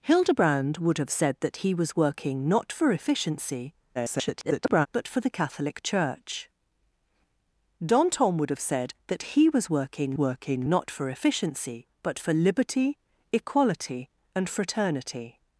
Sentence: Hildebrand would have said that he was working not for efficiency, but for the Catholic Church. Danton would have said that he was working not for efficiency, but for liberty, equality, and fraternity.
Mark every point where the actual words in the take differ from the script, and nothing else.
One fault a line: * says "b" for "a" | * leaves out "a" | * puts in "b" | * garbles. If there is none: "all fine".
* garbles
* puts in "working"